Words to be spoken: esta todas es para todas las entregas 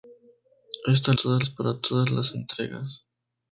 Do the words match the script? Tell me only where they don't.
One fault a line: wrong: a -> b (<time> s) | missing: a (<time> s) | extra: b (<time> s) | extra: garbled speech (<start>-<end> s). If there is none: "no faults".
no faults